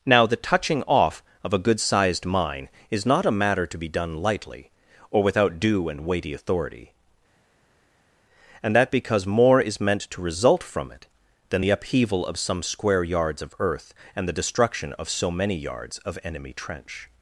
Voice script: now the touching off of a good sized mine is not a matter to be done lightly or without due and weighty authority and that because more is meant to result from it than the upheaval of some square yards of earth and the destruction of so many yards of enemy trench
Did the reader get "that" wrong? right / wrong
right